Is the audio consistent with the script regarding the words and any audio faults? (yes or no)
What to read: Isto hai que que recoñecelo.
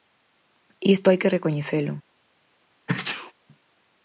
no